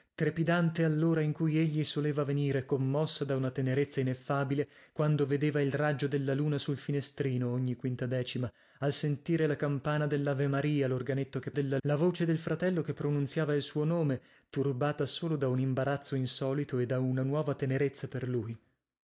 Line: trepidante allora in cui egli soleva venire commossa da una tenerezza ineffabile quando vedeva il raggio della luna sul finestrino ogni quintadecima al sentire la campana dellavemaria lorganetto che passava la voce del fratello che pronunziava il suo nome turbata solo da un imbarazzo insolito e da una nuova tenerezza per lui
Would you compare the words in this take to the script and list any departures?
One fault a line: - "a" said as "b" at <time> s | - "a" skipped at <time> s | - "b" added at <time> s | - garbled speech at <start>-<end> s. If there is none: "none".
- "passava" said as "della" at 11.5 s